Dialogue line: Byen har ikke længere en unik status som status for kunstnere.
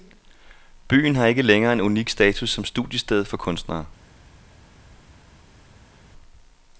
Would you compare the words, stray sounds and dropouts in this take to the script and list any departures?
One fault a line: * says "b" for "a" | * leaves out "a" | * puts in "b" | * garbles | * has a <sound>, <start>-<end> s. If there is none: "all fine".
* says "studiested" for "status"